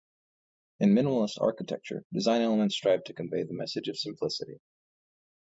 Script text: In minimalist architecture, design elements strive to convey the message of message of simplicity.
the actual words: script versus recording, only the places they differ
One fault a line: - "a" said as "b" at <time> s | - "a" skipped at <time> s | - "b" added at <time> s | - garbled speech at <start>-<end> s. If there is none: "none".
- "message of" skipped at 4.0 s